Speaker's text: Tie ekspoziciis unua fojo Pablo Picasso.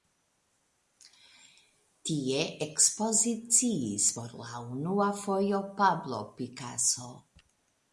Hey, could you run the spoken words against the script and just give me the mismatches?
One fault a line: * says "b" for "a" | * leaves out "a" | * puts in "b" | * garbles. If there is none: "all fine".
* puts in "por la"